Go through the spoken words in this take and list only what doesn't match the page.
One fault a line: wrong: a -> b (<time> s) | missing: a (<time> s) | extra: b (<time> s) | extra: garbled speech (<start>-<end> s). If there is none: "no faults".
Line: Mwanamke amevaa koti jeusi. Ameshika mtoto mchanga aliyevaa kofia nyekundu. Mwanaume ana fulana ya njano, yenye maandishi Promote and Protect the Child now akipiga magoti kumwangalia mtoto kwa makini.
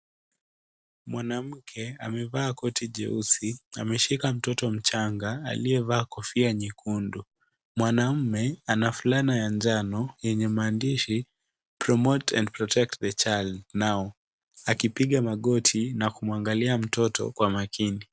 extra: na (15.9 s)